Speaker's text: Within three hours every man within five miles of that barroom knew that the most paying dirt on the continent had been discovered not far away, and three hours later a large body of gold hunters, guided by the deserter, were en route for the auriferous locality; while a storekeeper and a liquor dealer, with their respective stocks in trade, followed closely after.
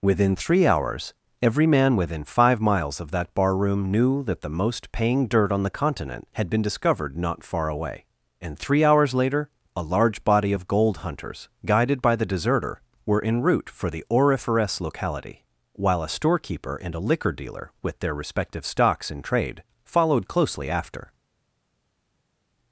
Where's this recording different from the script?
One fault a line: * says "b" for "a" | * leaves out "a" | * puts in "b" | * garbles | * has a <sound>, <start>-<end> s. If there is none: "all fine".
all fine